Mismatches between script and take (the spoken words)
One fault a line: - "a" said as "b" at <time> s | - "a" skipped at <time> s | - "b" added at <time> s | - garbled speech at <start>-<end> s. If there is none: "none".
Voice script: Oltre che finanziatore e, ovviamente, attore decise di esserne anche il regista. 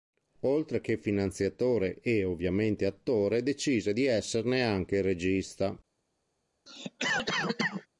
none